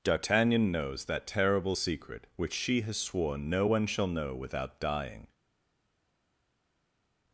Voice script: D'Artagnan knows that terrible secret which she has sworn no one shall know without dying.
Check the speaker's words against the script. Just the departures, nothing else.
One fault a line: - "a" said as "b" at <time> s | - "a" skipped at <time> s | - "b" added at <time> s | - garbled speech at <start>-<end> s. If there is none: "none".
none